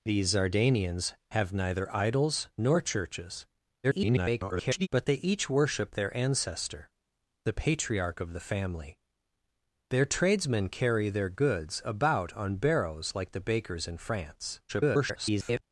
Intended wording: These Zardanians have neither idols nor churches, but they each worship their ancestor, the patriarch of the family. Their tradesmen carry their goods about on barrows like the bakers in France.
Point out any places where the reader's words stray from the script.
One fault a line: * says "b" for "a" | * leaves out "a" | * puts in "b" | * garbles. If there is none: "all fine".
* garbles
* garbles